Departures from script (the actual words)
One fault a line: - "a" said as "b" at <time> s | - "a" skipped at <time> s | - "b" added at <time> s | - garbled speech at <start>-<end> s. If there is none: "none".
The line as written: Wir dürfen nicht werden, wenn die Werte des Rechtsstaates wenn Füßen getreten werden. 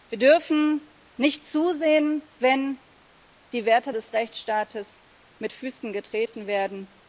- "werden" said as "zusehen" at 1.4 s
- "wenn" said as "mit" at 5.4 s